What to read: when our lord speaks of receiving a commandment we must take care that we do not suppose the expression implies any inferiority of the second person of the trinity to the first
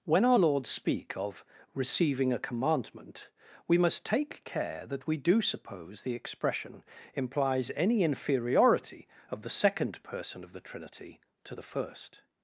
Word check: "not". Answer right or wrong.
wrong